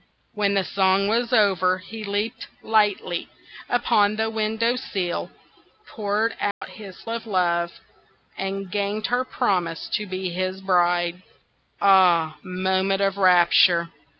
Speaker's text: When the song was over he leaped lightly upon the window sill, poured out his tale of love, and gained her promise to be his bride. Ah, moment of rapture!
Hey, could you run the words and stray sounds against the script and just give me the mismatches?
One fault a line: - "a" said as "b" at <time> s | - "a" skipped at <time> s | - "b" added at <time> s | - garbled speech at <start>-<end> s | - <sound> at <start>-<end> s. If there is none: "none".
- dropout at 6.5-6.6 s
- "tale" skipped at 7.0 s